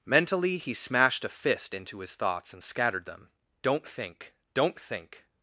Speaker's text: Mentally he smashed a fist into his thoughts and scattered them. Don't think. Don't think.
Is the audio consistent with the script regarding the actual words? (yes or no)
yes